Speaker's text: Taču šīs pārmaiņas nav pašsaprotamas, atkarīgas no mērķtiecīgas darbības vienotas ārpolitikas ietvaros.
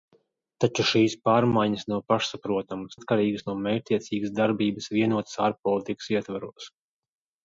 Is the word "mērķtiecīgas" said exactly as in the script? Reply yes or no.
yes